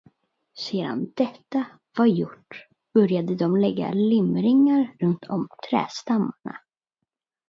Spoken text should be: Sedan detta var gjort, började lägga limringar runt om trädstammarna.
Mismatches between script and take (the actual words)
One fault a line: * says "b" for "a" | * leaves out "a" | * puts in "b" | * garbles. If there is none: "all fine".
* puts in "de"